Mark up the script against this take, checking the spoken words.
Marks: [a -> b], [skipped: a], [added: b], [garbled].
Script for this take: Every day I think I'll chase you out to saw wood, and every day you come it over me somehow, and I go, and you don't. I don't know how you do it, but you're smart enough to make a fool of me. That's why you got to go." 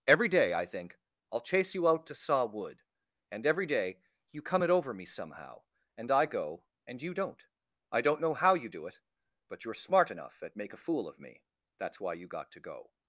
Every day I think I'll chase you out to saw wood, and every day you come it over me somehow, and I go, and you don't. I don't know how you do it, but you're smart enough [to -> at] make a fool of me. That's why you got to go."